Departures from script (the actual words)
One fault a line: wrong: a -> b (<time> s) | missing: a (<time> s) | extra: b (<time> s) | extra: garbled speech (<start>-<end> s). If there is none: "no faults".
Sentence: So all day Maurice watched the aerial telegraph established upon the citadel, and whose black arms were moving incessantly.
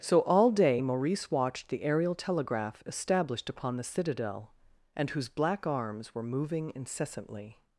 no faults